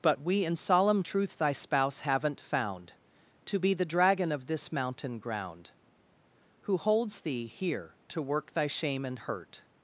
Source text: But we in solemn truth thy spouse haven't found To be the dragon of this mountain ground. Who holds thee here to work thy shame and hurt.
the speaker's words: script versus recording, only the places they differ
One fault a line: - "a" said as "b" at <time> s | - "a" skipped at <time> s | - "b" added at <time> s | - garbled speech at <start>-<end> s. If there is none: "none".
none